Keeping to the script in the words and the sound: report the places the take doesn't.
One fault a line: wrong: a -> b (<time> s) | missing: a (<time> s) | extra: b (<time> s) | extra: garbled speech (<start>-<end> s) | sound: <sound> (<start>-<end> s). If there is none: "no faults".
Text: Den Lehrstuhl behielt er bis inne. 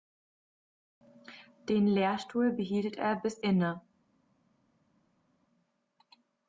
no faults